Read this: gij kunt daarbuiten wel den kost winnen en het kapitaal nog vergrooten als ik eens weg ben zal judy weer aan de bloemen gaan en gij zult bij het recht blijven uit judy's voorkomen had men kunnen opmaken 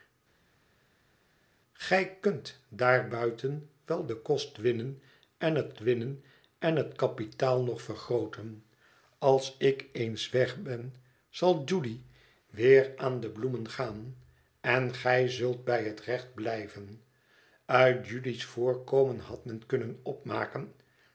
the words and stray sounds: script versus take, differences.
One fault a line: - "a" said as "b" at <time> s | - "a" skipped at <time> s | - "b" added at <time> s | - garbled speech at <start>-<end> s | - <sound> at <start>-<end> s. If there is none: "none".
- "winnen en het" added at 5.8 s